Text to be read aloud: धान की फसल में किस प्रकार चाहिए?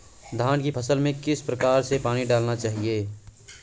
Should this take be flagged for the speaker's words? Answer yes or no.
yes